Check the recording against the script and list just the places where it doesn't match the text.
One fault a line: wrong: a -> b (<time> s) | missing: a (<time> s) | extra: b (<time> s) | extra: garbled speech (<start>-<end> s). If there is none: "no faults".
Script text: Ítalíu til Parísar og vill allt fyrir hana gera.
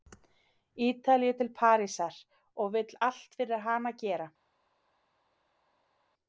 no faults